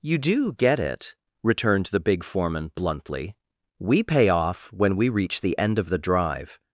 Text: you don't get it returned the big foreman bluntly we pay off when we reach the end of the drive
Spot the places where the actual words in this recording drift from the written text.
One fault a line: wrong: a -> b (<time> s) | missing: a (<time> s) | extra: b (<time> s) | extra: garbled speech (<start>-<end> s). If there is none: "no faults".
wrong: don't -> do (0.2 s)